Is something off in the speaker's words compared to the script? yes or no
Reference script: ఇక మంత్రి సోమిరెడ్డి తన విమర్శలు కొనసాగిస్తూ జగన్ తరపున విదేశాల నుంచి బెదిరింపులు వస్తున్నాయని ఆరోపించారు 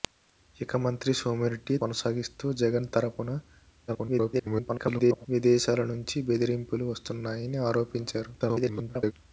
yes